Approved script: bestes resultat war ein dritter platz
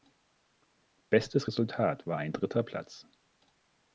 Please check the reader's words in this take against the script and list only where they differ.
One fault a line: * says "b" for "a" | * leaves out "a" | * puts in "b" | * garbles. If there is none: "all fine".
all fine